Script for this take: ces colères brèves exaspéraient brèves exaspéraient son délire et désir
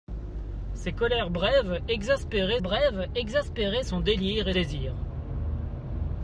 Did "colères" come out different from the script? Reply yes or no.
no